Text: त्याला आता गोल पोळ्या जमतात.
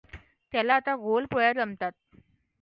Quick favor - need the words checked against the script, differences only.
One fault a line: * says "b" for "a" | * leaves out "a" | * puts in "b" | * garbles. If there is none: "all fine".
all fine